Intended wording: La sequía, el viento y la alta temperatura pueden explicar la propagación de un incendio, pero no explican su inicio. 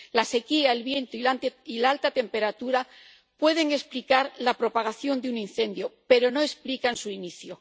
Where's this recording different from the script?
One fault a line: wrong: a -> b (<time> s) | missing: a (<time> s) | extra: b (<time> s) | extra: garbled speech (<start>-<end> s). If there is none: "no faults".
no faults